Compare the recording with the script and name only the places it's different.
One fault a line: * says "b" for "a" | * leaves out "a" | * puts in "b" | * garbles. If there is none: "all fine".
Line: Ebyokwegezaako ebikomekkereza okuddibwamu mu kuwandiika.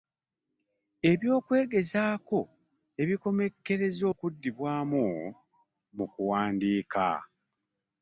all fine